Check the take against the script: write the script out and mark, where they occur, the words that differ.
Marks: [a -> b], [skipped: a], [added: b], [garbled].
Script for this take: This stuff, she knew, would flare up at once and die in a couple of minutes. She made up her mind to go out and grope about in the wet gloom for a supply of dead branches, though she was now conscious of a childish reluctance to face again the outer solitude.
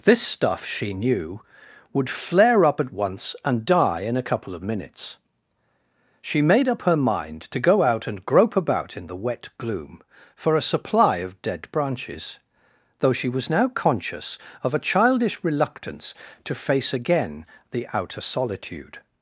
This stuff, she knew, would flare up at once and die in a couple of minutes. She made up her mind to go out and grope about in the wet gloom for a supply of dead branches, though she was now conscious of a childish reluctance to face again the outer solitude.